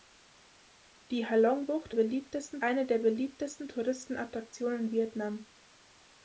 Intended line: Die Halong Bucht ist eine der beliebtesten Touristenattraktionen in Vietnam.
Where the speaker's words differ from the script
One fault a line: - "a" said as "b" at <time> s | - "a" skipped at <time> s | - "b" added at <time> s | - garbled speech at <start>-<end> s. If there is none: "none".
- "ist" said as "beliebtesten" at 1.9 s